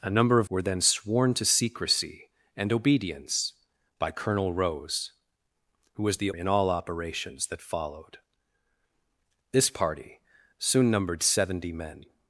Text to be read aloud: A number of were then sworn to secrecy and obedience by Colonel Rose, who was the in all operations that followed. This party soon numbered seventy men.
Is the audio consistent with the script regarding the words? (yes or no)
yes